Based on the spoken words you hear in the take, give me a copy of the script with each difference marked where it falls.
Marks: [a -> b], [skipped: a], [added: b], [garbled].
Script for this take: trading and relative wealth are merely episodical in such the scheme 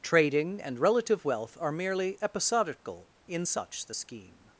trading and relative wealth are merely episodical in such the scheme